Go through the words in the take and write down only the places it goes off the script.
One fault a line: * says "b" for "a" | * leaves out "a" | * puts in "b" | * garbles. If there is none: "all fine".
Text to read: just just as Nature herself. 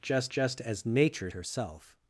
all fine